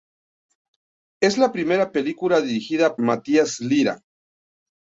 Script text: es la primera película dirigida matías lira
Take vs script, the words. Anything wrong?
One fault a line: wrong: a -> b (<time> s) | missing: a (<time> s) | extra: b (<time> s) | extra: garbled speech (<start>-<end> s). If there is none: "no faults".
no faults